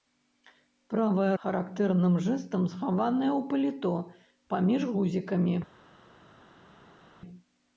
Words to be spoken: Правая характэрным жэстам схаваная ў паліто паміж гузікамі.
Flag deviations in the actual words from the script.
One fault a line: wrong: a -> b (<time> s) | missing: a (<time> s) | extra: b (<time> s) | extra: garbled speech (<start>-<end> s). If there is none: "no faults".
no faults